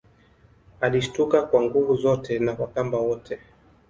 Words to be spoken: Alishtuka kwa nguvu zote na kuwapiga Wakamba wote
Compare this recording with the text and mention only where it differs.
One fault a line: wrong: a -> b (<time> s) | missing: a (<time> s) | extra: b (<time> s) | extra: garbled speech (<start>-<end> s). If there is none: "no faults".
missing: kuwapiga (2.5 s)